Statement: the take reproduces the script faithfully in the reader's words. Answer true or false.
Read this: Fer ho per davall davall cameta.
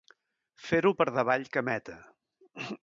false